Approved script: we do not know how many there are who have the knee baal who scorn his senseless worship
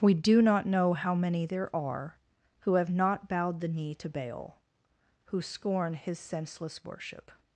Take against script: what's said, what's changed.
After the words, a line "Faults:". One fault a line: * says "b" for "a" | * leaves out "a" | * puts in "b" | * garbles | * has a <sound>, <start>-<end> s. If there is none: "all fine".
we do not know how many there are who have not bowed the knee to baal who scorn his senseless worship
Faults:
* puts in "not bowed"
* puts in "to"